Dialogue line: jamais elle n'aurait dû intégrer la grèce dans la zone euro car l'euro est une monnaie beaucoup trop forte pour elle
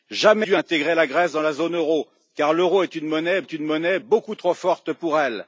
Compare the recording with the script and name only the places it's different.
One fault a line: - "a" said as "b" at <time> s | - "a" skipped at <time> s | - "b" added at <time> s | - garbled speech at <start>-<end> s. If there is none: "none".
- "elle n'aurait" skipped at 0.5 s
- "est une monnaie" added at 3.4 s